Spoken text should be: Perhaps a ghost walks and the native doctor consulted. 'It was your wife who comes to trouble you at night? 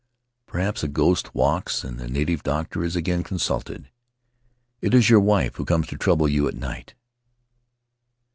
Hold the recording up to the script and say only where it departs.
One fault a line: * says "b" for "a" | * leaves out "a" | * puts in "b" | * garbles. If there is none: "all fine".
* puts in "is again"
* says "is" for "was"